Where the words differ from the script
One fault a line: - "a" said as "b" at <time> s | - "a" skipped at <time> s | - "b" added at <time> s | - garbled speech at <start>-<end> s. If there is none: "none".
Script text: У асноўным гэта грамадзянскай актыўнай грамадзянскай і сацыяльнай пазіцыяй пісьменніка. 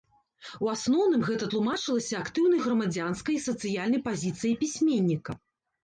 - "грамадзянскай" said as "тлумачылася" at 1.5 s